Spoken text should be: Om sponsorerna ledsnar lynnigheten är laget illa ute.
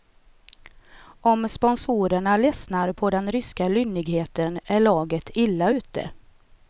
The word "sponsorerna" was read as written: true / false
true